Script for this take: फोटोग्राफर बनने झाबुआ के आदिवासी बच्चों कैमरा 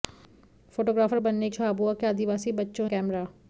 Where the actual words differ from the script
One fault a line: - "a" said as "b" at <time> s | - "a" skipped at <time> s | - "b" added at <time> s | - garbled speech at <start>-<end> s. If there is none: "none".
none